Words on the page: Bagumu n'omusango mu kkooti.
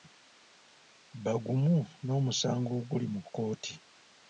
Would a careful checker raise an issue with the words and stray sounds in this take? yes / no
yes